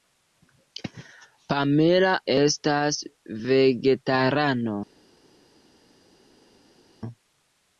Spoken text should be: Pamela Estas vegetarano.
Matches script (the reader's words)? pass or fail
pass